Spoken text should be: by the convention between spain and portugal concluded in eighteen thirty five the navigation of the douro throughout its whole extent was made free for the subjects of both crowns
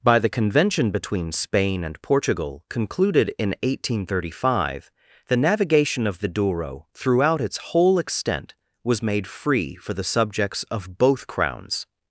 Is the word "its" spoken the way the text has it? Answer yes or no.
yes